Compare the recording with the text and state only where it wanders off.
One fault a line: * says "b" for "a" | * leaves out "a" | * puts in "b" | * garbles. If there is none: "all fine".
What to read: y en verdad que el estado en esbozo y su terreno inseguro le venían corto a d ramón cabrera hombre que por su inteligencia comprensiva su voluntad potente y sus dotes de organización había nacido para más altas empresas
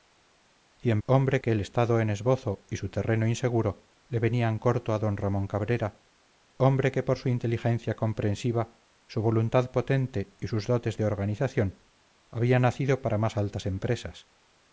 * says "hombre" for "verdad"